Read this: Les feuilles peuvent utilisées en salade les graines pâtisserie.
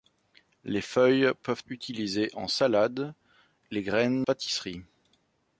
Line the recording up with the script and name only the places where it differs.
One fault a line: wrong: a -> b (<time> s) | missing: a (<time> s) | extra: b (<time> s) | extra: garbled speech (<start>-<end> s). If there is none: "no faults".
no faults